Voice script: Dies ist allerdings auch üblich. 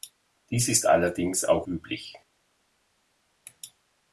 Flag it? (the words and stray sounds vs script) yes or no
no